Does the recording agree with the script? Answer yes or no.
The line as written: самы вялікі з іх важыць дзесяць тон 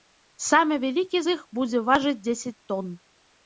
no